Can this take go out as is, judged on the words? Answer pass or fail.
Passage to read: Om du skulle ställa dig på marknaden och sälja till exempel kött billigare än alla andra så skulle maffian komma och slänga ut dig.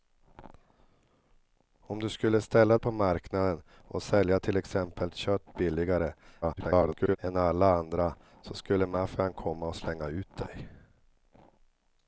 fail